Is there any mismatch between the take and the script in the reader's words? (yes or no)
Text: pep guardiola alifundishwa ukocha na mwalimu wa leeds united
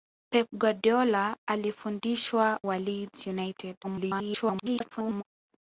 yes